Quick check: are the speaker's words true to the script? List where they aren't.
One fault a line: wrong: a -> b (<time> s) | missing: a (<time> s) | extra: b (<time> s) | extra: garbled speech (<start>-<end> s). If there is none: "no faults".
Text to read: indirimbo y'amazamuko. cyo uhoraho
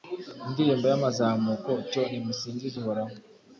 extra: nimusingize (2.1 s)